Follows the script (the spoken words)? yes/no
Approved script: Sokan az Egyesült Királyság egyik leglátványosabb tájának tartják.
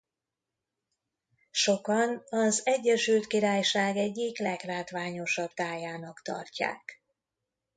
yes